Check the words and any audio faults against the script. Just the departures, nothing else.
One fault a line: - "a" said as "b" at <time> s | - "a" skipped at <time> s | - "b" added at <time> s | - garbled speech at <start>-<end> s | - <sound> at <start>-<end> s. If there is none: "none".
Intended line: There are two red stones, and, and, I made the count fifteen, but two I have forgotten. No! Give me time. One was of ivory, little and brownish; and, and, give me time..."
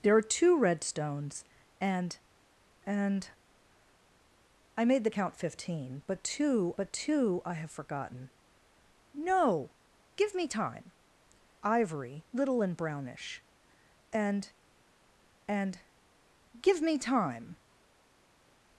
- "but two" added at 6.8 s
- "One was of" skipped at 10.9 s